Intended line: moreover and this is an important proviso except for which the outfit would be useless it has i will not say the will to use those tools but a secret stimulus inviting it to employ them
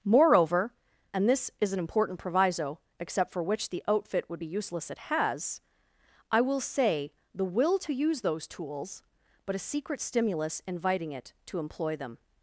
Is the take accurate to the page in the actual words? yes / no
no